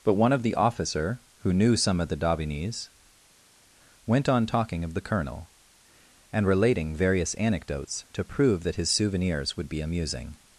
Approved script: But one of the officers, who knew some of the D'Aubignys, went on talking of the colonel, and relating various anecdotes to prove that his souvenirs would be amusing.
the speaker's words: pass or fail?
fail